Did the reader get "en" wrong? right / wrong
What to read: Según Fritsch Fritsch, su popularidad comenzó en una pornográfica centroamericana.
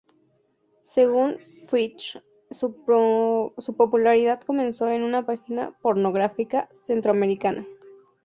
right